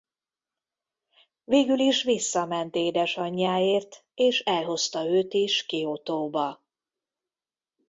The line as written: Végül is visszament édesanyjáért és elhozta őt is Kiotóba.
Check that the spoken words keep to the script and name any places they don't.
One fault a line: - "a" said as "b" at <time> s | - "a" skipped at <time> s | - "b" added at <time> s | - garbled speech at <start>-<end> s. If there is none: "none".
none